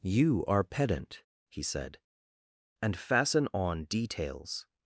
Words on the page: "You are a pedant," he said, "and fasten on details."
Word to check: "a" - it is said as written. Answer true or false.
false